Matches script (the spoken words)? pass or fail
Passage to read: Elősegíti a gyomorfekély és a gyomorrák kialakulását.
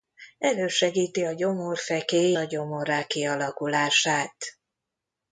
fail